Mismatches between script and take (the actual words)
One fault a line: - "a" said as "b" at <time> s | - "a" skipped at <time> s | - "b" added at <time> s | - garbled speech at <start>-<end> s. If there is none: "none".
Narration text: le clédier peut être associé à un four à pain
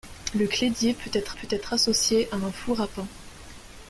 - "peut être" added at 1.3 s